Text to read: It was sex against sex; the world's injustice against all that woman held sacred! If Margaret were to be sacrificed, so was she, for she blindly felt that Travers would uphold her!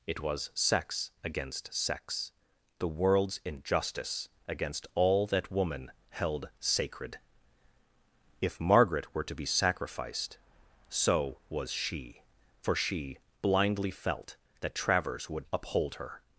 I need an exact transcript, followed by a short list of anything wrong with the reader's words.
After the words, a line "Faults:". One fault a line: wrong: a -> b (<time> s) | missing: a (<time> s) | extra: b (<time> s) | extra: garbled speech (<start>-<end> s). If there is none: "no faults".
It was sex against sex; the world's injustice against all that woman held sacred! If Margaret were to be sacrificed, so was she, for she blindly felt that Travers would uphold her!
Faults:
no faults